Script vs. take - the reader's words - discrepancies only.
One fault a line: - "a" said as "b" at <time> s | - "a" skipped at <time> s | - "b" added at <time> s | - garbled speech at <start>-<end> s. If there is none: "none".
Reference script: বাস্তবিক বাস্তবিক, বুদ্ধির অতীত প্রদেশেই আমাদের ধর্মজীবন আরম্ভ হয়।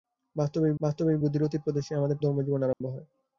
none